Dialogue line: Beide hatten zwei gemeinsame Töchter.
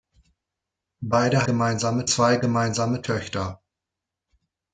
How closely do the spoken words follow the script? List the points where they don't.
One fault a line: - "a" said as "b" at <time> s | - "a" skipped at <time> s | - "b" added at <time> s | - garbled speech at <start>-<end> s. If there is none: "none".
- "hatten" said as "gemeinsame" at 1.4 s